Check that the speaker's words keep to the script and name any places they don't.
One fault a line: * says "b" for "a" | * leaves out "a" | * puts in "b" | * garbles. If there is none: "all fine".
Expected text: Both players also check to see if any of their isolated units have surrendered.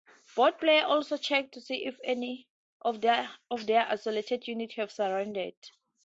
all fine